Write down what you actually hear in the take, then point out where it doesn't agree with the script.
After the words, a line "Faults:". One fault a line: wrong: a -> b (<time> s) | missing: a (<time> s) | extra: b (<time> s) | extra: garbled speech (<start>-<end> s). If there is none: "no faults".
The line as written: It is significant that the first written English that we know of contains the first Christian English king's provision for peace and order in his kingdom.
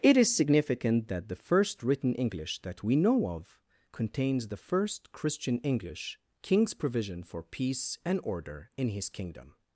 It is significant that the first written English that we know of contains the first Christian English king's provision for peace and order in his kingdom.
Faults:
no faults